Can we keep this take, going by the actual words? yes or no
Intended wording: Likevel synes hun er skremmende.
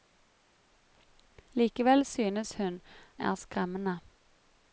yes